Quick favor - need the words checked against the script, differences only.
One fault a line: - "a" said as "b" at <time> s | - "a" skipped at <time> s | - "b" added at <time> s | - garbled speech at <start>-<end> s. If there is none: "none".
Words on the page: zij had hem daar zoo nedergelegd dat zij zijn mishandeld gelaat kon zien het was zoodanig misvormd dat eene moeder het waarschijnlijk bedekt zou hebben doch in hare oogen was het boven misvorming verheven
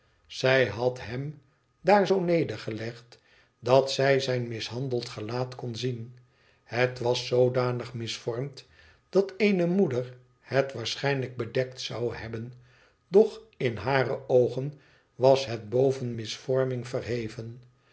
none